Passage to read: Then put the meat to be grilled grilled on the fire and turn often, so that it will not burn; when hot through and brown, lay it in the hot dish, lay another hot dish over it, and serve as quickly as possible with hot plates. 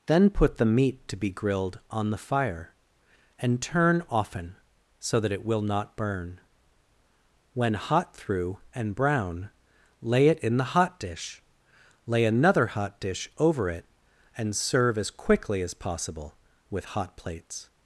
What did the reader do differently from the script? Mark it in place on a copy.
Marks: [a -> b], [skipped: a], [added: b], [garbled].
Then put the meat to be grilled [skipped: grilled] on the fire and turn often, so that it will not burn; when hot through and brown, lay it in the hot dish, lay another hot dish over it, and serve as quickly as possible with hot plates.